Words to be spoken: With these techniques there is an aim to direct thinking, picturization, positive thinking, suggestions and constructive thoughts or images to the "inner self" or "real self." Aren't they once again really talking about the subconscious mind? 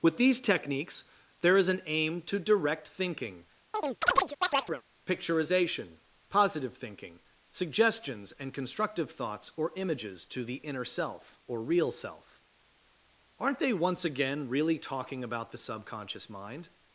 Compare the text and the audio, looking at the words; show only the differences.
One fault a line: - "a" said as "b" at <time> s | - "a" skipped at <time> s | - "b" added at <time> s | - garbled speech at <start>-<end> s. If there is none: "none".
none